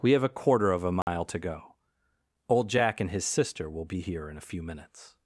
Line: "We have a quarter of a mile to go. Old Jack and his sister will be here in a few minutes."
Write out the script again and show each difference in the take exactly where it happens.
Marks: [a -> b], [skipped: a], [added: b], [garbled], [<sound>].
"We have a quarter of a mile [dropout] to go. Old Jack and his sister will be here in a few minutes."